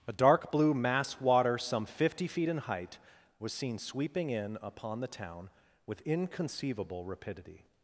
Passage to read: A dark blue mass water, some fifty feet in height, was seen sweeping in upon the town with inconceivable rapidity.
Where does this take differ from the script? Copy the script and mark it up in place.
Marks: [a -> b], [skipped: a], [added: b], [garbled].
A dark blue mass water, some fifty feet in height, was seen sweeping in upon the town with inconceivable rapidity.